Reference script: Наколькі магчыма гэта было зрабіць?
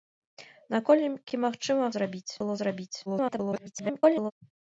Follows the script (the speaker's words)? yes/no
no